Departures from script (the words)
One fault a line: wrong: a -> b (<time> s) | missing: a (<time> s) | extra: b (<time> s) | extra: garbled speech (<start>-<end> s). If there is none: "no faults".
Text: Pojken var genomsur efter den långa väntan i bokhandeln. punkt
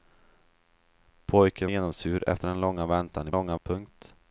missing: var (1.7 s)
wrong: bokhandeln -> långa (3.3 s)